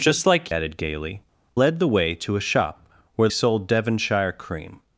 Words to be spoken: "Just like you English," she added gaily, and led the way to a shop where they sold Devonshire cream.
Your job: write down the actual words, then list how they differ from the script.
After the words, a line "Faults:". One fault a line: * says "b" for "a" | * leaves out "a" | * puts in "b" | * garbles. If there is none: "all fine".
"Just like added gaily, led the way to a shop where sold Devonshire cream.
Faults:
* leaves out "you English she"
* leaves out "and"
* leaves out "they"